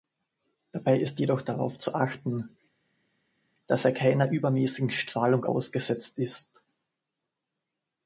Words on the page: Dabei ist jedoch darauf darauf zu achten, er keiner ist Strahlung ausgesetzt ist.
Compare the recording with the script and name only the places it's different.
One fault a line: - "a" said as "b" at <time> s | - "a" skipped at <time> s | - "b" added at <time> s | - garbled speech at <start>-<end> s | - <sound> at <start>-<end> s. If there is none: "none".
- "darauf" skipped at 1.8 s
- "dass" added at 3.7 s
- "ist" said as "übermäßigen" at 4.3 s